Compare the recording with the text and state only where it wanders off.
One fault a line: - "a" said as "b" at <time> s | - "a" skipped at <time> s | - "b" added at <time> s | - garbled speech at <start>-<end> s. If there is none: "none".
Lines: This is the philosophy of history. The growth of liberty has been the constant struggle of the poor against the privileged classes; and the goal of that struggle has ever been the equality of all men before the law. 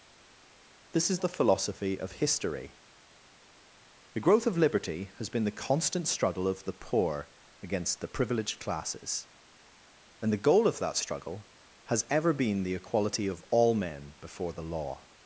none